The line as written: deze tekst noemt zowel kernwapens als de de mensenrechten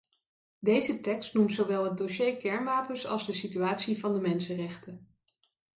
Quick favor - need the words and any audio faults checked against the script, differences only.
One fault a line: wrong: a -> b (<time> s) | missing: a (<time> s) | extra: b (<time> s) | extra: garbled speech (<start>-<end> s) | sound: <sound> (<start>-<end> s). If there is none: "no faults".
extra: het dossier (1.8 s)
extra: situatie van (3.3 s)